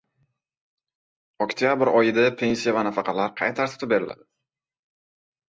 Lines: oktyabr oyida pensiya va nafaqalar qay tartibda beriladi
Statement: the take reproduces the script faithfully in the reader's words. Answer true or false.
true